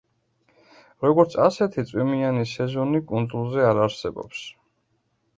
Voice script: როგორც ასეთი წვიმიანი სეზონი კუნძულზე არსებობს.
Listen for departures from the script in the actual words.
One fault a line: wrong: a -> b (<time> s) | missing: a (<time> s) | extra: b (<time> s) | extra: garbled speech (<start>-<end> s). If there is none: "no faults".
extra: არ (3.7 s)